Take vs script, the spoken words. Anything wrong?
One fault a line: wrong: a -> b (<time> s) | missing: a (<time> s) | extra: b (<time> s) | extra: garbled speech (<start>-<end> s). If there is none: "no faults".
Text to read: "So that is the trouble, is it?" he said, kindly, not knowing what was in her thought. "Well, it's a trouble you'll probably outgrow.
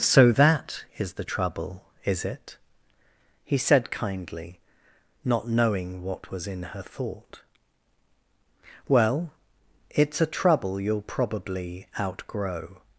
no faults